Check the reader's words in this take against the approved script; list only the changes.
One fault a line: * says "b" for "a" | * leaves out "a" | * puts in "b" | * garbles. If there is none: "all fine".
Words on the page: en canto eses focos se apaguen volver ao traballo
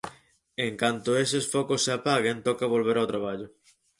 * puts in "toca"